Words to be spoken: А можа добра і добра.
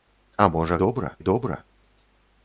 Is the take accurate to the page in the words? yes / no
yes